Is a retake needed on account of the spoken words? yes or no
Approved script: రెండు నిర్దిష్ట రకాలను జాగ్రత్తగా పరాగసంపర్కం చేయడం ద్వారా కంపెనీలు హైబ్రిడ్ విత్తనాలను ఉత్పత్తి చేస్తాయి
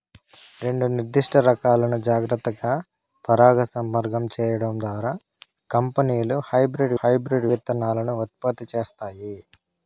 yes